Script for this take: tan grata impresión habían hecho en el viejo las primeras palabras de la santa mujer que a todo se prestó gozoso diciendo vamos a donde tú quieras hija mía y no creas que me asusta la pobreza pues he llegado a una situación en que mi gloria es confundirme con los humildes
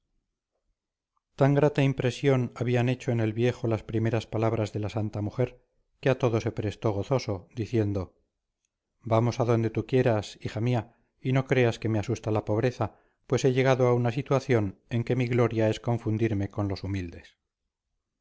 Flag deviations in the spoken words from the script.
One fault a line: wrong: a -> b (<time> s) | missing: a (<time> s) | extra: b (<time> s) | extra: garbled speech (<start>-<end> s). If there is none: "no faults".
no faults